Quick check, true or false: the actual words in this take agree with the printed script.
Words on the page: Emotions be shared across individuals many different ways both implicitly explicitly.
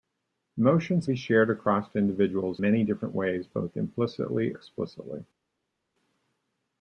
true